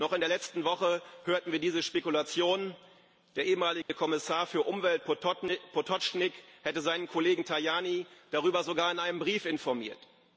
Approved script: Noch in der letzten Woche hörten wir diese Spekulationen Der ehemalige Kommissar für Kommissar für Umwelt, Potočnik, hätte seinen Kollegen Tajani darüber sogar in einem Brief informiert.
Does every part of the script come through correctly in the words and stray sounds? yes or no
no